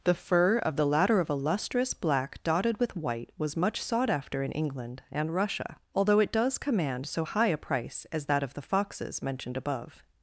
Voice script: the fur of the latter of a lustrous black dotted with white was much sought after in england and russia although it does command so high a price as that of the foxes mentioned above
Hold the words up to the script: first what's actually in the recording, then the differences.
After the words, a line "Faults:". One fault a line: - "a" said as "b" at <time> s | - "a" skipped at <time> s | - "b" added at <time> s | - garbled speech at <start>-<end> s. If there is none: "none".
the fur of the latter of a lustrous black dotted with white was much sought after in england and russia although it does command so high a price as that of the foxes mentioned above
Faults:
none